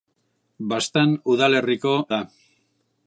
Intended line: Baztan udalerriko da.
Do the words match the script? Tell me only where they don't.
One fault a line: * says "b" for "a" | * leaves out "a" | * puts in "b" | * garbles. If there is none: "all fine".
all fine